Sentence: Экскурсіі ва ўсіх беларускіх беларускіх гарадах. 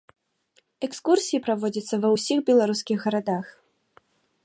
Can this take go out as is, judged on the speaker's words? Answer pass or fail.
fail